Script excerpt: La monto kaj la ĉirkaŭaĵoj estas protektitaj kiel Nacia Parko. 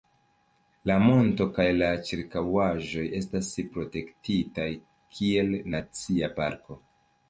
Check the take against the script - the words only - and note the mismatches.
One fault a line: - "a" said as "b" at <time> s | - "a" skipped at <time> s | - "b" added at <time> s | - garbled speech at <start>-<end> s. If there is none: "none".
none